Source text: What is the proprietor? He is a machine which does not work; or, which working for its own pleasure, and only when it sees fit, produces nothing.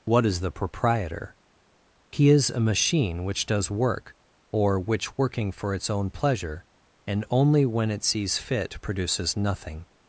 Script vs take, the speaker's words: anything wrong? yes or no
yes